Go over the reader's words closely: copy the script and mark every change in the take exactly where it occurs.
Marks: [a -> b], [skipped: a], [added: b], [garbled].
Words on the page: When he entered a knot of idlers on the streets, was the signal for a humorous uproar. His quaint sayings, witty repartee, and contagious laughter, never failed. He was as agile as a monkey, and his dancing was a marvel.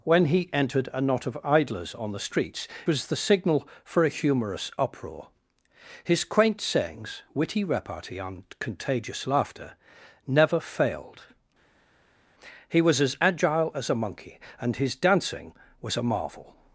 When he entered a knot of idlers on the streets, was the signal for a humorous uproar. His quaint sayings, witty repartee, and contagious laughter, never failed. He was as agile as a monkey, and his dancing was a marvel.